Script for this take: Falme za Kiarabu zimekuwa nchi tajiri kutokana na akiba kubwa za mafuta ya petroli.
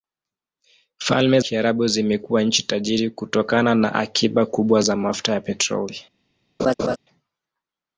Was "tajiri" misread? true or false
false